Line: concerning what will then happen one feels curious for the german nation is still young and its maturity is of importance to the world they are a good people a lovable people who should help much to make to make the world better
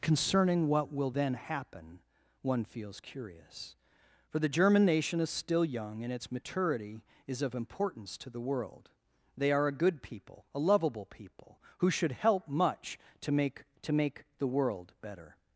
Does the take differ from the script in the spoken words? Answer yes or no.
no